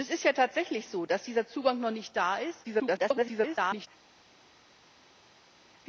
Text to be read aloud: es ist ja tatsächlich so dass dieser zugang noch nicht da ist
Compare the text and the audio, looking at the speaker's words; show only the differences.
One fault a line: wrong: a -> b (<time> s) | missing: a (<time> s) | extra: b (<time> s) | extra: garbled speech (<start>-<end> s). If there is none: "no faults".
extra: garbled speech (2.6-3.9 s)